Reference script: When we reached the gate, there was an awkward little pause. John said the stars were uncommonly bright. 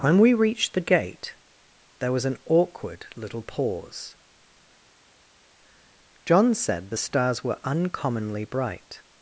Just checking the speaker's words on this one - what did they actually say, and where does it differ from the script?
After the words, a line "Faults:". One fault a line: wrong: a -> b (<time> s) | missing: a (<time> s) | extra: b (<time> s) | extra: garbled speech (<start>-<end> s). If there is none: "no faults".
When we reached the gate, there was an awkward little pause. John said the stars were uncommonly bright.
Faults:
no faults